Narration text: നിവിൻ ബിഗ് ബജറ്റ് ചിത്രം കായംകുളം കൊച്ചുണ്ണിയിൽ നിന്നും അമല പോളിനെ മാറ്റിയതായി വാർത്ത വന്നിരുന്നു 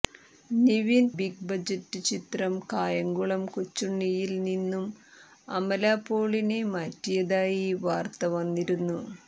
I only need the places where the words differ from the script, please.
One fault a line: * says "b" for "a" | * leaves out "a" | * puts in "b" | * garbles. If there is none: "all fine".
all fine